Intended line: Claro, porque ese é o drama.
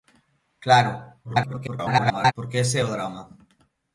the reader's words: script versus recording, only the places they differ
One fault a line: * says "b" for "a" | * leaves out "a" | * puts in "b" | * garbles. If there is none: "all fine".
* garbles